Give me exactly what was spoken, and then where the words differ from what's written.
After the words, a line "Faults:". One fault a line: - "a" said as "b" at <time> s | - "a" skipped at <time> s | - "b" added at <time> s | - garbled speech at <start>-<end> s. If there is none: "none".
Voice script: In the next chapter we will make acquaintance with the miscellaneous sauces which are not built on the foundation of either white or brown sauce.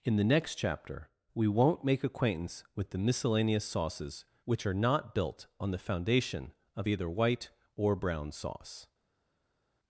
In the next chapter we won't make acquaintance with the miscellaneous sauces which are not built on the foundation of either white or brown sauce.
Faults:
- "will" said as "won't" at 1.5 s